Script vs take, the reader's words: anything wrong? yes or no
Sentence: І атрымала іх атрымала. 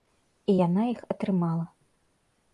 yes